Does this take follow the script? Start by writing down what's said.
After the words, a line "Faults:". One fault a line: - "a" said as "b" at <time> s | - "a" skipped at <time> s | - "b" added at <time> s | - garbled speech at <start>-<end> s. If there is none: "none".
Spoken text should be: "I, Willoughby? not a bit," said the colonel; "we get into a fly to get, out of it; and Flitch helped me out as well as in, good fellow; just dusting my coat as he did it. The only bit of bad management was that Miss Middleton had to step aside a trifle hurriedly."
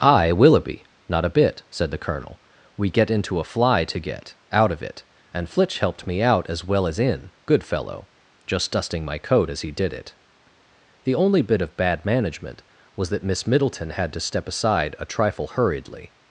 "I, Willoughby? not a bit," said the colonel; "we get into a fly to get, out of it; and Flitch helped me out as well as in, good fellow; just dusting my coat as he did it. The only bit of bad management was that Miss Middleton had to step aside a trifle hurriedly."
Faults:
none